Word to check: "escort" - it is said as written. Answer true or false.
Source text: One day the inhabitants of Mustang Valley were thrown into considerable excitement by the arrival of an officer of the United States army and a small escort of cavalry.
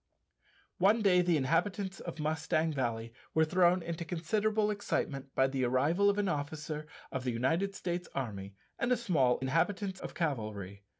false